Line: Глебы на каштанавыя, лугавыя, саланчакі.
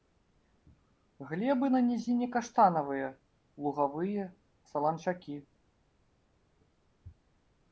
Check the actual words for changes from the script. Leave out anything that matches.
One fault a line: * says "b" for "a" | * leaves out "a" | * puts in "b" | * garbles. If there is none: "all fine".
* puts in "нізіне"